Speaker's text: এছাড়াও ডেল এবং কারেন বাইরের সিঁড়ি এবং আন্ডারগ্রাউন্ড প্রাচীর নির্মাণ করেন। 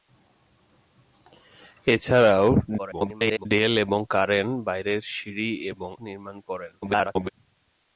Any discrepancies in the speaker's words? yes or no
yes